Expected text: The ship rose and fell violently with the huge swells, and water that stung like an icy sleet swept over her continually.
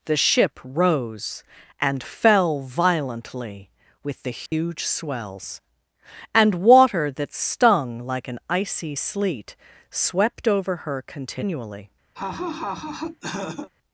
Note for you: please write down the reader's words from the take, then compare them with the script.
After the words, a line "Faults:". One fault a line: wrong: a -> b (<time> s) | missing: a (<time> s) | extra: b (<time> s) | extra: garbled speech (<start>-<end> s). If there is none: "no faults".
The ship rose and fell violently with the huge swells, and water that stung like an icy sleet swept over her continually.
Faults:
no faults